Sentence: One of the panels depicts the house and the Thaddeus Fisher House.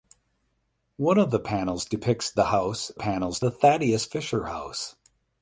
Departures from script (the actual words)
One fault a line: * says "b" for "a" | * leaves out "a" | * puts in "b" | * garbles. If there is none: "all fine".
* says "panels" for "and"